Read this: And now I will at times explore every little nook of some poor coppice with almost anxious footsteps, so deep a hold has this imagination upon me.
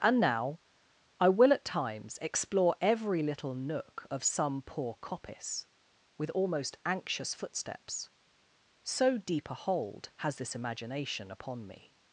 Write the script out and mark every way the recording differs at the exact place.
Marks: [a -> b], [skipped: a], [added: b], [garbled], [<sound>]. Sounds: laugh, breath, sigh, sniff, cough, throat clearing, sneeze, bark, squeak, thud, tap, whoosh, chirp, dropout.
And now I will at times explore every little nook of some poor coppice with almost anxious footsteps, so deep a hold has this imagination upon me.